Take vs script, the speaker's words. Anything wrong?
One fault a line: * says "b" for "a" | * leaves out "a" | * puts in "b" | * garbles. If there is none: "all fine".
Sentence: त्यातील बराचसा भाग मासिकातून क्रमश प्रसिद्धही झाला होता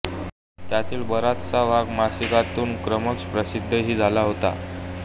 all fine